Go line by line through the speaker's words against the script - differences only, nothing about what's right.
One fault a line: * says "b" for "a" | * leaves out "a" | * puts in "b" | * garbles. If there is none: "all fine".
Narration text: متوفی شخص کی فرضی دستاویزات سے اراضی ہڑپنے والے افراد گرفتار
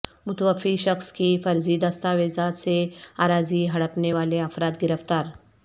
all fine